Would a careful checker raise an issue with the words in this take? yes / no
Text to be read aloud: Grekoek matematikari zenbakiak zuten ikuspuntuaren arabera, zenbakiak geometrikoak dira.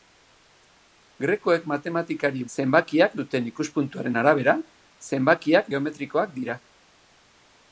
no